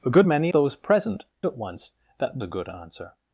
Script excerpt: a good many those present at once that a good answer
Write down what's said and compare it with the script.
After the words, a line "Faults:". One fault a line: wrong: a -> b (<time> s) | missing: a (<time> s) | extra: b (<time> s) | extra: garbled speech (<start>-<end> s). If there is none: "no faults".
a good many those present at once that a good answer
Faults:
no faults